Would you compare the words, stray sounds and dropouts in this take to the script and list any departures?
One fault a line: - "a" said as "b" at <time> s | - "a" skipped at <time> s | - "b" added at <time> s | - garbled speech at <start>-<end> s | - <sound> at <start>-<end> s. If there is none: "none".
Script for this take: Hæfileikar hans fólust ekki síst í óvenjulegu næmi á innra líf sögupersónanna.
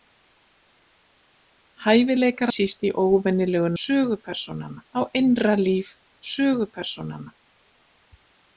- "hans fólust ekki" skipped at 2.5 s
- "næmi" said as "sögupersónanna" at 3.8 s